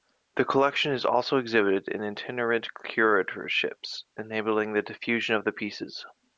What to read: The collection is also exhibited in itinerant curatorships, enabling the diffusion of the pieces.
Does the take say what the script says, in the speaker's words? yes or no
yes